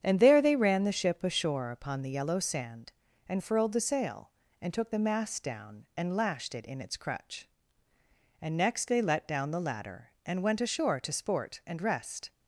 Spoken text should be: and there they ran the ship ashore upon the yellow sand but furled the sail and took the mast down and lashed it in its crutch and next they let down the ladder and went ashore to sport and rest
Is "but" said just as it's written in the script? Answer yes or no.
no